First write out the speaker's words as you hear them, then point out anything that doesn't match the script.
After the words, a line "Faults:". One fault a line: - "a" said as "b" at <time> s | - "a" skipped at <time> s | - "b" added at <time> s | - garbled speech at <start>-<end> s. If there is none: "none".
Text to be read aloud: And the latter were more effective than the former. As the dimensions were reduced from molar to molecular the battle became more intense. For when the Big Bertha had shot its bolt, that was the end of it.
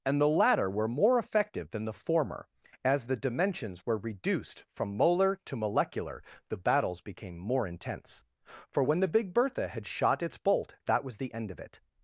And the latter were more effective than the former. As the dimensions were reduced from molar to molecular the battles became more intense. For when the Big Bertha had shot its bolt, that was the end of it.
Faults:
- "battle" said as "battles" at 6.6 s